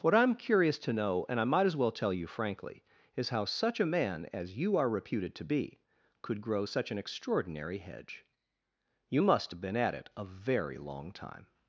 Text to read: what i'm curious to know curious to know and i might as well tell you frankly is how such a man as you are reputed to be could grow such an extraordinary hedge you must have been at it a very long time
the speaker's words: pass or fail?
fail